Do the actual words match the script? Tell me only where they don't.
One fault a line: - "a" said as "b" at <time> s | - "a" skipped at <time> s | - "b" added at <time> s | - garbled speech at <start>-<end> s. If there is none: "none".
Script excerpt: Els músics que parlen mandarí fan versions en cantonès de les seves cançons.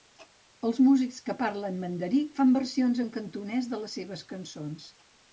none